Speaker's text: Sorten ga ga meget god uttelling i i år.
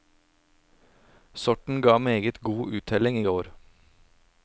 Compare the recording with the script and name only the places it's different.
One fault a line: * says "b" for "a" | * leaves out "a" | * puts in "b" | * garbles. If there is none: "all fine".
* leaves out "ga"
* leaves out "i"